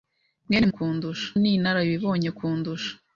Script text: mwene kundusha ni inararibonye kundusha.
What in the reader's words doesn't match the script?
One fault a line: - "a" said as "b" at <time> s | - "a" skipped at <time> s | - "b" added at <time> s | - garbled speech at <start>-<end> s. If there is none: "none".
none